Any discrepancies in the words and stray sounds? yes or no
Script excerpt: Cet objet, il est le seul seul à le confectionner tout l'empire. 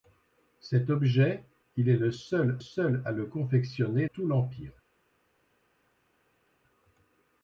no